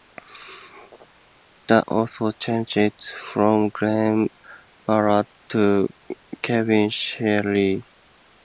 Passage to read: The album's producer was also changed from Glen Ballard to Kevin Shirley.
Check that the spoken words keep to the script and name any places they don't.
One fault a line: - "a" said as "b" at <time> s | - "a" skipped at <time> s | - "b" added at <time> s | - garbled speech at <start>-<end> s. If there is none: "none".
- "album's producer was" skipped at 1.8 s